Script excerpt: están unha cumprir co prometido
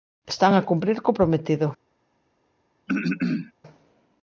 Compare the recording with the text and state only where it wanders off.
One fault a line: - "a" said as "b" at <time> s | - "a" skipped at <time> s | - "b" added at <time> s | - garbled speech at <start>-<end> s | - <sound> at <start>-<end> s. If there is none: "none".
- "unha" said as "a" at 0.5 s
- throat clearing at 2.9-3.5 s